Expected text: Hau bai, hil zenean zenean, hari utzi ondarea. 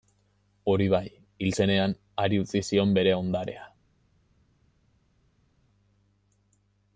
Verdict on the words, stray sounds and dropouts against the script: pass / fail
fail